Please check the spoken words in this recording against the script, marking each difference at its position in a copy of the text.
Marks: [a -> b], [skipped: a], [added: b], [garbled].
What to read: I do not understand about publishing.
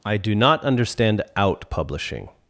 I do not understand [about -> out] publishing.